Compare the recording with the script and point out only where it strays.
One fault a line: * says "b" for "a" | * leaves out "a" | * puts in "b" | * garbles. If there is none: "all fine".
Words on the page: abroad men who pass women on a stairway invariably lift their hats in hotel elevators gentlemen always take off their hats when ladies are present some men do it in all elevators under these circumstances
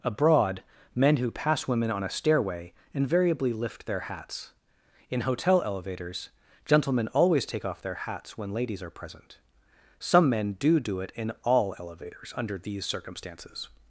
* puts in "do"